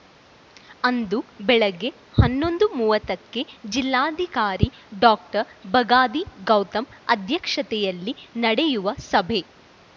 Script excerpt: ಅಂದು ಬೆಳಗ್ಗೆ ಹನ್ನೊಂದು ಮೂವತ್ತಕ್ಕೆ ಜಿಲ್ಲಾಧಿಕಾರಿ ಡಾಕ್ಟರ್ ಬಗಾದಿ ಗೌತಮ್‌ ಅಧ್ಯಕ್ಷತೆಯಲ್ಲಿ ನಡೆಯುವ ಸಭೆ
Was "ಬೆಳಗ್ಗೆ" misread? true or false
false